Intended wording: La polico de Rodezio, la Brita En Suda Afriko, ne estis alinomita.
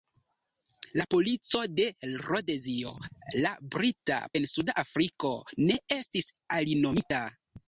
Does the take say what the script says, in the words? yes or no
yes